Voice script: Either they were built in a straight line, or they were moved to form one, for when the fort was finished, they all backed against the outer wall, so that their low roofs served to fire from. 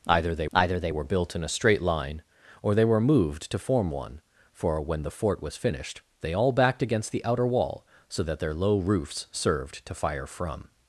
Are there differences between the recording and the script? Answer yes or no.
yes